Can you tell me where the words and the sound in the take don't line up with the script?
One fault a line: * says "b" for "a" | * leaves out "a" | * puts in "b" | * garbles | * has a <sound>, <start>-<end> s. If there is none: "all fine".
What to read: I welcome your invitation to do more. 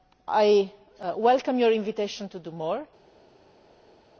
all fine